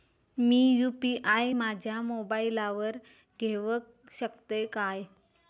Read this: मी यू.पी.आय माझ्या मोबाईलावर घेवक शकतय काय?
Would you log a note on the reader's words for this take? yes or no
no